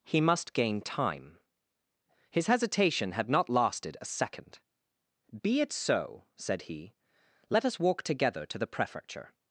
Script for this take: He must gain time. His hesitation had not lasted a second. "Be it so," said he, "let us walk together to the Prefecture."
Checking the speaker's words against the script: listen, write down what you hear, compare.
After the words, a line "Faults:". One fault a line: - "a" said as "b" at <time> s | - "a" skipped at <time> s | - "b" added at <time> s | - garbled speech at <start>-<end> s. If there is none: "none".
He must gain time. His hesitation had not lasted a second. "Be it so," said he, "let us walk together to the Prefecture."
Faults:
none